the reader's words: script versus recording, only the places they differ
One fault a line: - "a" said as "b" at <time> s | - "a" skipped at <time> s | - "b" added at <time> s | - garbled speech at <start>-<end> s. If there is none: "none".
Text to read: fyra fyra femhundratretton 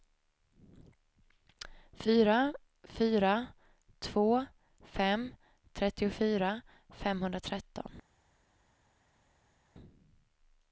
- "två fem trettiofyra" added at 4.0 s